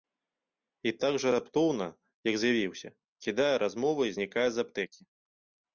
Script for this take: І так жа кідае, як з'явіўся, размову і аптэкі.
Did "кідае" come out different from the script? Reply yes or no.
yes